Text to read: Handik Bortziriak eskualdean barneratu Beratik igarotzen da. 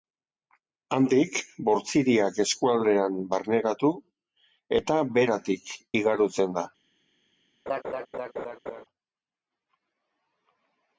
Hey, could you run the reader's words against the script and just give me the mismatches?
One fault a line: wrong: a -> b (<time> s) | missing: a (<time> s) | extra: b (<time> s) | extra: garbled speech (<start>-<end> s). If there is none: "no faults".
extra: eta (4.8 s)